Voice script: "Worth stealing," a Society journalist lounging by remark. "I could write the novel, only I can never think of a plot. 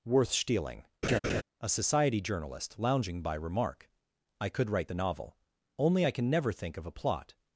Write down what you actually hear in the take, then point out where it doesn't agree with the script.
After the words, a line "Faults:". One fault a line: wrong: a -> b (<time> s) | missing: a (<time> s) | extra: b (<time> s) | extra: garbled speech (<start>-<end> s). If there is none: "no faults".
"Worth stealing," a Society journalist lounging by remark. "I could write the novel, only I can never think of a plot.
Faults:
no faults